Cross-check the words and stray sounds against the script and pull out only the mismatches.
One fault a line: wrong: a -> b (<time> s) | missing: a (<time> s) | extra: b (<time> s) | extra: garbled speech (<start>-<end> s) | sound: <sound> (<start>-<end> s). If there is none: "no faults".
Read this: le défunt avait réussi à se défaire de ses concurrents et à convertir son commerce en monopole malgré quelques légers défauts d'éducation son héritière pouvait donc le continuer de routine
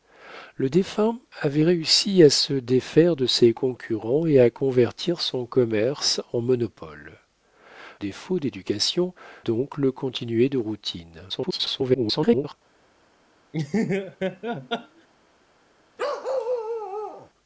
missing: malgré quelques légers (7.2 s)
missing: son héritière pouvait (9.2 s)
extra: garbled speech (11.3-12.5 s)
sound: laugh (13.5-15.1 s)
sound: bark (16.0-17.3 s)